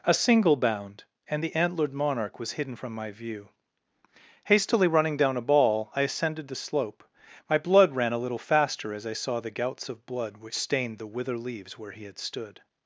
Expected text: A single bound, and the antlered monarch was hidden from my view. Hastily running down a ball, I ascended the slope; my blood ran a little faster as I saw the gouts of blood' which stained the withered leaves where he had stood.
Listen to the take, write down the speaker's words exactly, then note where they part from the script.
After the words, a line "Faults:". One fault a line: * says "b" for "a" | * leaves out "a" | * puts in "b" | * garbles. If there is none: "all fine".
A single bound, and the antlered monarch was hidden from my view. Hastily running down a ball, I ascended the slope; my blood ran a little faster as I saw the gouts of blood' which stained the wither leaves where he had stood.
Faults:
* says "wither" for "withered"